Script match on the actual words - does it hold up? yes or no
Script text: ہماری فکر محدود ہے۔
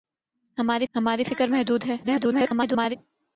no